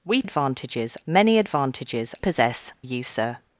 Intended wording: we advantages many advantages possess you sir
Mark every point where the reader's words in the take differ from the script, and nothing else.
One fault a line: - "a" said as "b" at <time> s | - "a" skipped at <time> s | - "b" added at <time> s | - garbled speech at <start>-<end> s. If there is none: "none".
none